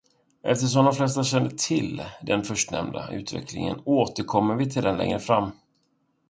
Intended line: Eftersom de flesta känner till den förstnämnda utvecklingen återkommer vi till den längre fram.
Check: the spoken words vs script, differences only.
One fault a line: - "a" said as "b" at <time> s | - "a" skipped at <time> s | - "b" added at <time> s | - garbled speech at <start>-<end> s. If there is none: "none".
none